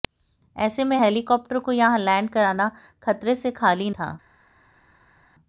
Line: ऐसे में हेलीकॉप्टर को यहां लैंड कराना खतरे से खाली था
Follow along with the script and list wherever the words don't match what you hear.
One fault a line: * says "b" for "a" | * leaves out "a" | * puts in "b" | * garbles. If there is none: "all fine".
all fine